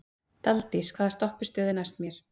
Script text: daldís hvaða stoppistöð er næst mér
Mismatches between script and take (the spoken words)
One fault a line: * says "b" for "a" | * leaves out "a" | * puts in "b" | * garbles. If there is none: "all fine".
all fine